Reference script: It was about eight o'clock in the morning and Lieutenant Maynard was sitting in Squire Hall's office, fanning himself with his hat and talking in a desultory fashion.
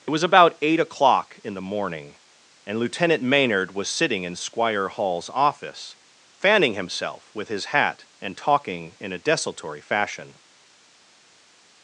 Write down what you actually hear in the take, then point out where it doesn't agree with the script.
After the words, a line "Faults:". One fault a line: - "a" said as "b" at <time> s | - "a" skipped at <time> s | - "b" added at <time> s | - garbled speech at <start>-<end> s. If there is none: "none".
It was about eight o'clock in the morning and Lieutenant Maynard was sitting in Squire Hall's office, fanning himself with his hat and talking in a desultory fashion.
Faults:
none